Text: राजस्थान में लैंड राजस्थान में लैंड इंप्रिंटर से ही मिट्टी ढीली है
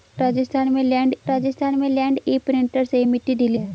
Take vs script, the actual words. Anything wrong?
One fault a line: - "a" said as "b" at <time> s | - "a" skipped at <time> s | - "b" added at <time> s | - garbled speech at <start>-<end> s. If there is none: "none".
none